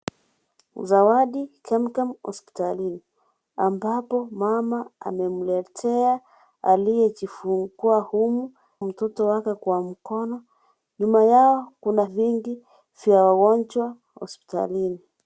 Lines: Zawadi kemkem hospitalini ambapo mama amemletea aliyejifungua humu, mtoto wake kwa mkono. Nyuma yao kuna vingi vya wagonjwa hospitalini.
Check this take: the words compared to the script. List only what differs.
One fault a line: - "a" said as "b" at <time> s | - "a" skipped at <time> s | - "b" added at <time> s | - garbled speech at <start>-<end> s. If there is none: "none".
none